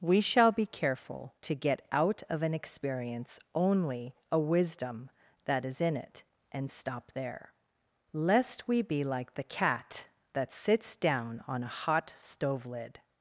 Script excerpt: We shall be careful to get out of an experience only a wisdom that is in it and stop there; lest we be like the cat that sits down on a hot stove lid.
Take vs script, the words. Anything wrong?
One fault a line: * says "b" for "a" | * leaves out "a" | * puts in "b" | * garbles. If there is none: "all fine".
all fine